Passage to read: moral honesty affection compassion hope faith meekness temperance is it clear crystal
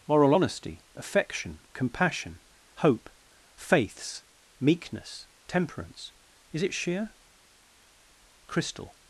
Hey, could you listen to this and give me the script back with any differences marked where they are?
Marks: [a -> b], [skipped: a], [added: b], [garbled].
moral honesty affection compassion hope [faith -> faiths] meekness temperance is it [clear -> sheer] crystal